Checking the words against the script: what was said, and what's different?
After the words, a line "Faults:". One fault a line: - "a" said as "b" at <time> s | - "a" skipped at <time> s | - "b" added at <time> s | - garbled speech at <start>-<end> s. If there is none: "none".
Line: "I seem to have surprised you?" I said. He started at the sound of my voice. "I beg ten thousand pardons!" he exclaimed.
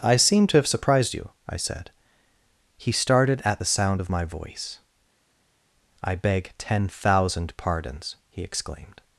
"I seem to have surprised you?" I said. He started at the sound of my voice. "I beg ten thousand pardons!" he exclaimed.
Faults:
none